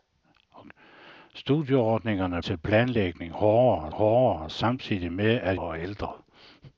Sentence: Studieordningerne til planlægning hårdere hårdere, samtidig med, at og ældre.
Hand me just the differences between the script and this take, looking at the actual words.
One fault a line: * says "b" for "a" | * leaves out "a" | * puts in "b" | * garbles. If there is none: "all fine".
all fine